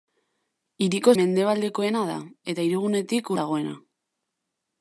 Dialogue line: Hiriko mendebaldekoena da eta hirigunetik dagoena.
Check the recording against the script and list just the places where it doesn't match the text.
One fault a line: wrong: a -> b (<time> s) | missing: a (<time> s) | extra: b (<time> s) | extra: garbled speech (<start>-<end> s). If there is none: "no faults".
no faults